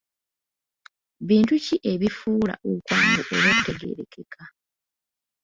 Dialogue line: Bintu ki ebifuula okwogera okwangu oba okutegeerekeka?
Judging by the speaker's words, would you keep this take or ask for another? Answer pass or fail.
fail